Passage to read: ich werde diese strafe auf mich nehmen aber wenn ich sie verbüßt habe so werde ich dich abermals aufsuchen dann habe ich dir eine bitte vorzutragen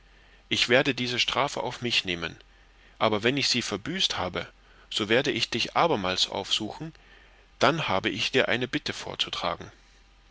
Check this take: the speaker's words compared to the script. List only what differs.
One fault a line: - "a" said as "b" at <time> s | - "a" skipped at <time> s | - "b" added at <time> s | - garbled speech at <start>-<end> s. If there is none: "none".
none